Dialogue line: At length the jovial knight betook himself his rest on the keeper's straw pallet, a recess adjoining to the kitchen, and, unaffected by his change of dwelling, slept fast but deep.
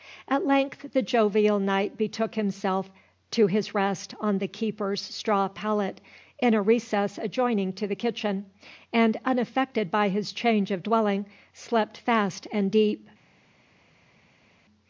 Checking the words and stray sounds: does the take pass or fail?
fail